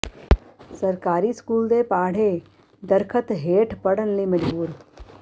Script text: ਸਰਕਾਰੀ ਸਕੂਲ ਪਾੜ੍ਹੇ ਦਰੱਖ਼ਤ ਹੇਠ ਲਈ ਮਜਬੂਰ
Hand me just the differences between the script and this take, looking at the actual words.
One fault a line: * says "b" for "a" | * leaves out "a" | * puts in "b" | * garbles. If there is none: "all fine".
* puts in "ਦੇ"
* puts in "ਪੜ੍ਹਨ"